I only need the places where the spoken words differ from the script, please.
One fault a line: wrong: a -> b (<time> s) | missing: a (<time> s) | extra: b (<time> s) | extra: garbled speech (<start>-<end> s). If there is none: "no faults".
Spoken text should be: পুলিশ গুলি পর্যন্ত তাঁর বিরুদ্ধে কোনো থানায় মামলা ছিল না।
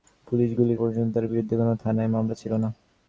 no faults